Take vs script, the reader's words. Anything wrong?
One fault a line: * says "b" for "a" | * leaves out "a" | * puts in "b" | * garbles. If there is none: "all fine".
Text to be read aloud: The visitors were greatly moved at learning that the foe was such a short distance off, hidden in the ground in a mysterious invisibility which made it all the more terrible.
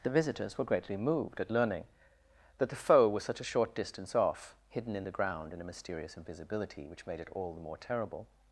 all fine